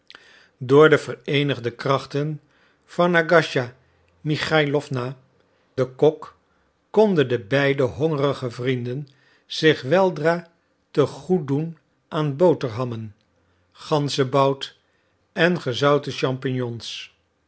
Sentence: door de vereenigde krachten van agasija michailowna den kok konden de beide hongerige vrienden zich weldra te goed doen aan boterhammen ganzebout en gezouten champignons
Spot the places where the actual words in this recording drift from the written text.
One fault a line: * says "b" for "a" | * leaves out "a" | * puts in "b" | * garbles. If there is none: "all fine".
all fine